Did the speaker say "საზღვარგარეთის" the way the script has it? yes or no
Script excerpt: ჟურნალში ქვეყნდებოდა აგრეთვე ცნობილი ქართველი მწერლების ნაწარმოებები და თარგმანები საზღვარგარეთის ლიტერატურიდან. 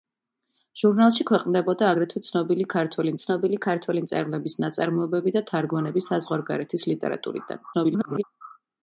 yes